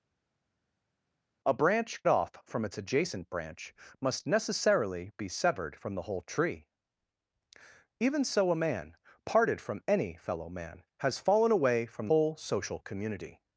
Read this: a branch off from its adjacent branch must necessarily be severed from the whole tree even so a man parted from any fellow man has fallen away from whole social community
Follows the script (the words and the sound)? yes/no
yes